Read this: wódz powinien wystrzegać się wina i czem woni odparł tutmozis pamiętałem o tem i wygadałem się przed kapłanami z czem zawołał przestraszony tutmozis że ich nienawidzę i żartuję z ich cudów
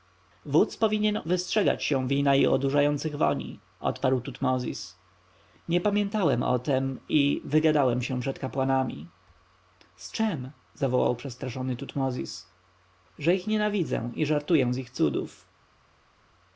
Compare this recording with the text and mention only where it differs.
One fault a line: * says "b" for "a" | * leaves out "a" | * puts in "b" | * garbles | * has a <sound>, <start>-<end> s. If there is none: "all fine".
* says "odurzających" for "czem"
* puts in "nie"